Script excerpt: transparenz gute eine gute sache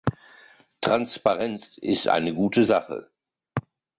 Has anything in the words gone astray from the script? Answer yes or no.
yes